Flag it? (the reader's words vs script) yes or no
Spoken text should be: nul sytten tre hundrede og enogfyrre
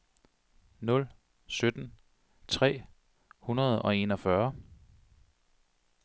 no